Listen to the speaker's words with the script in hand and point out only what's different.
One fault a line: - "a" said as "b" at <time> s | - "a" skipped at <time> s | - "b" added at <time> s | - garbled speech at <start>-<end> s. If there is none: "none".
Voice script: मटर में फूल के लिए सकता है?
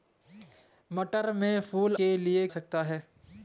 none